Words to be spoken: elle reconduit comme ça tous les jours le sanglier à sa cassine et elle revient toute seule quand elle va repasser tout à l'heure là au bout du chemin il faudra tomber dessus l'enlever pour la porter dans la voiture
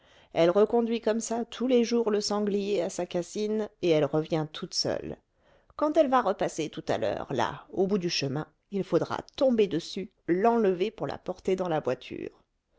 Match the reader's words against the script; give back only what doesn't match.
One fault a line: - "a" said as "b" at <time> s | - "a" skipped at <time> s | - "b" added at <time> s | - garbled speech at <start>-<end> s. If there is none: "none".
none